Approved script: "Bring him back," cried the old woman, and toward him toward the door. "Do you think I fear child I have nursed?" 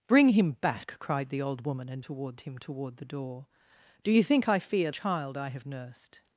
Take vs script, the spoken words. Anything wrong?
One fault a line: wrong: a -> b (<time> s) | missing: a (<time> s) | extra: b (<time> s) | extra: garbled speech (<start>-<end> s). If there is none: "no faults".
no faults